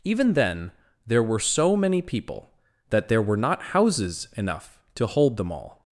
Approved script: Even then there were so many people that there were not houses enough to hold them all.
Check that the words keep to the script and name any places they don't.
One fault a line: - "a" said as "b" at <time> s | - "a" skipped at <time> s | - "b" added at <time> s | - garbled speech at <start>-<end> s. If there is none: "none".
none